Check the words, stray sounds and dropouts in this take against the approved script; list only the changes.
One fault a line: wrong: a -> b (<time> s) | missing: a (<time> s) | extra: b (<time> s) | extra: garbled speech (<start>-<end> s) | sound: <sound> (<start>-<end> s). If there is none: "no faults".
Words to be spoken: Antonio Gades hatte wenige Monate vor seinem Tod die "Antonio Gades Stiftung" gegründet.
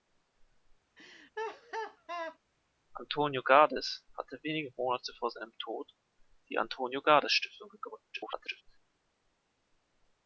sound: laugh (1.0-2.4 s)
extra: garbled speech (8.1-8.6 s)